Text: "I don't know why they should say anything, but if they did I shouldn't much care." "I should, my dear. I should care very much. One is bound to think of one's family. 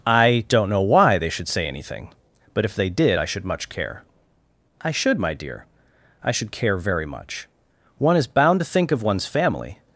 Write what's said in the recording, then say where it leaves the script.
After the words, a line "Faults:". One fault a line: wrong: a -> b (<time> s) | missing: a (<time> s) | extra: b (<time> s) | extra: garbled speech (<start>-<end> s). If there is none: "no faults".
"I don't know why they should say anything, but if they did I should much care." "I should, my dear. I should care very much. One is bound to think of one's family.
Faults:
wrong: shouldn't -> should (3.2 s)